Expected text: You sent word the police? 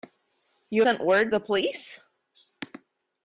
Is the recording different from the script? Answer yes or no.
no